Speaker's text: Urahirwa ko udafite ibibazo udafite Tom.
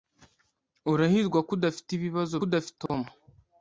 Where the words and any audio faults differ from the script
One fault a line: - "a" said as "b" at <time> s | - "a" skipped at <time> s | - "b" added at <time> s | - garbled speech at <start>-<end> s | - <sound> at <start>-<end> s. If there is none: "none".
- dropout at 2.9-2.9 s